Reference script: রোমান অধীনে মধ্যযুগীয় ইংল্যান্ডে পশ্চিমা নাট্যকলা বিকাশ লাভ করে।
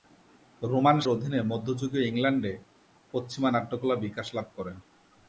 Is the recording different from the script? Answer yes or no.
no